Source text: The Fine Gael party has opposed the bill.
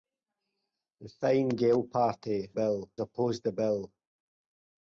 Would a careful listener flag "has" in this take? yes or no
yes